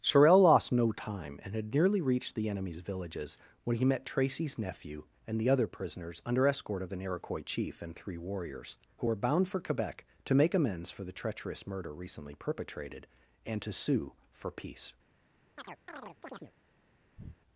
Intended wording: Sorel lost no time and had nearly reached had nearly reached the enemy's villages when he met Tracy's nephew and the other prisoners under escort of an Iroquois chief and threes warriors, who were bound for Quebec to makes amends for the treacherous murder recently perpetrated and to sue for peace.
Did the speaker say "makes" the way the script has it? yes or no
no